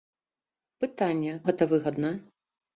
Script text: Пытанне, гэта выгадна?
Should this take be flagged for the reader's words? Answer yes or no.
no